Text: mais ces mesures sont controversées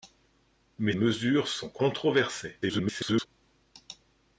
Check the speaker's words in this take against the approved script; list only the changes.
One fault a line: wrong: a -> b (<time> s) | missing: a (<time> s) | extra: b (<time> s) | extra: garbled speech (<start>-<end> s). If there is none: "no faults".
missing: ces (0.9 s)
extra: garbled speech (2.6-3.3 s)